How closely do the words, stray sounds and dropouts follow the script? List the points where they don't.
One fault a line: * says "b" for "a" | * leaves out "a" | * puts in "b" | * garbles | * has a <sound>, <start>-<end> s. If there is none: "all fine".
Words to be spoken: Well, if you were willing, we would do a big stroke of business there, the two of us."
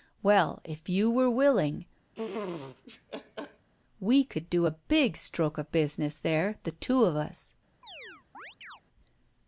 * has a laugh, 2.1-3.7 s
* says "could" for "would"
* has a chirp, 7.8-8.8 s